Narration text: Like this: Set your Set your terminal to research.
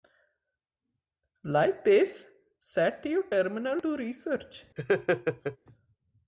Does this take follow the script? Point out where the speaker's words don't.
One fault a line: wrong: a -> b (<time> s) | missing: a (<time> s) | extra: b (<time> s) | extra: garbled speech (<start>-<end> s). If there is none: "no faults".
missing: Set your (3.3 s)